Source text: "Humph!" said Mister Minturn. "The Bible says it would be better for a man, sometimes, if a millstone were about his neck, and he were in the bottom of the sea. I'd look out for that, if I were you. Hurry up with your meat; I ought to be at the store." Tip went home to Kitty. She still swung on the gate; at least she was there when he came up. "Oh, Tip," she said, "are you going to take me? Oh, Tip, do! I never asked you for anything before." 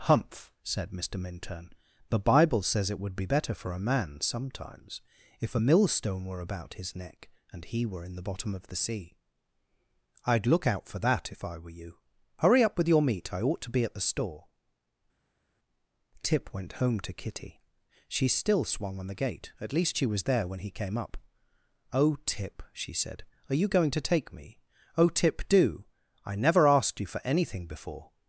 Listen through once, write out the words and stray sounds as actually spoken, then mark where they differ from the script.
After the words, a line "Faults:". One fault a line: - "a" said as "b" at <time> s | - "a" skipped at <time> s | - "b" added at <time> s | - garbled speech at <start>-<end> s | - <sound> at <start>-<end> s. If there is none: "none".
"Humph!" said Mister Minturn. "The Bible says it would be better for a man, sometimes, if a millstone were about his neck, and he were in the bottom of the sea. I'd look out for that, if I were you. Hurry up with your meat; I ought to be at the store." Tip went home to Kitty. She still swung on the gate; at least she was there when he came up. "Oh, Tip," she said, "are you going to take me? Oh, Tip, do! I never asked you for anything before."
Faults:
none